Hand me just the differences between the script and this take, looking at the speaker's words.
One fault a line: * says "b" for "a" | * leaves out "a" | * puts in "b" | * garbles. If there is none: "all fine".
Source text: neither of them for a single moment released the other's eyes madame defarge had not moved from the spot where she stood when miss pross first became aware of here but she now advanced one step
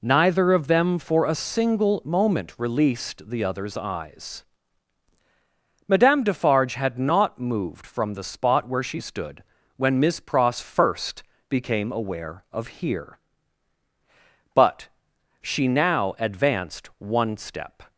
all fine